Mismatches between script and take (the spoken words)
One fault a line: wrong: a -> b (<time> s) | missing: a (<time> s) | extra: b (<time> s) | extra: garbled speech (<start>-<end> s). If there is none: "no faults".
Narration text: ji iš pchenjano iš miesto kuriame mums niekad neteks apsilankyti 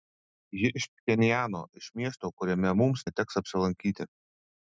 missing: niekad (3.1 s)